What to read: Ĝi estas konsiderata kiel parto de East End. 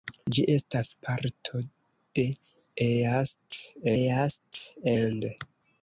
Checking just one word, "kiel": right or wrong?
wrong